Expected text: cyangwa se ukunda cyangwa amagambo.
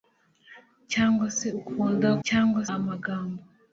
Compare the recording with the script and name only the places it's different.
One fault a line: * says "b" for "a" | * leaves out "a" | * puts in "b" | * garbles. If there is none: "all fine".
all fine